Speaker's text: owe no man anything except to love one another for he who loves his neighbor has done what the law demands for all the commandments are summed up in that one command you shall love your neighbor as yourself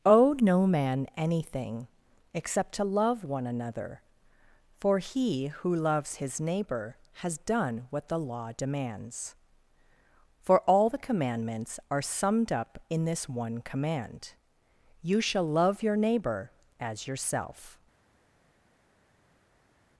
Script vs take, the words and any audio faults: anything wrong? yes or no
yes